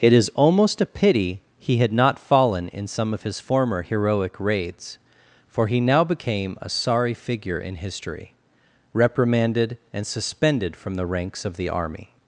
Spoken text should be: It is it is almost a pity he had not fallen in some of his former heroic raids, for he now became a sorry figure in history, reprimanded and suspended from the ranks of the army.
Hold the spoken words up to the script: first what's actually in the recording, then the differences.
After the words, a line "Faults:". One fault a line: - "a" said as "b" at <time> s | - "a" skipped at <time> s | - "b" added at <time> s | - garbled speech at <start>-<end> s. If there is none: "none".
It is almost a pity he had not fallen in some of his former heroic raids, for he now became a sorry figure in history, reprimanded and suspended from the ranks of the army.
Faults:
- "it is" skipped at 0.3 s